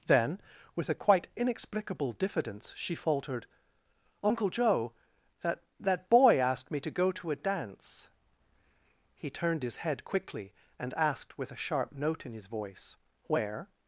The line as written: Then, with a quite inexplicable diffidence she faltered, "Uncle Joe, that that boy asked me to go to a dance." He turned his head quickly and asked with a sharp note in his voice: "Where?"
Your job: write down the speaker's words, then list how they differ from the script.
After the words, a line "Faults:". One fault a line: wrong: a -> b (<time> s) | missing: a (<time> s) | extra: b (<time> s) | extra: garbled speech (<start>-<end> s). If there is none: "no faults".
Then, with a quite inexplicable diffidence she faltered, "Uncle Joe, that that boy asked me to go to a dance." He turned his head quickly and asked with a sharp note in his voice: "Where?"
Faults:
no faults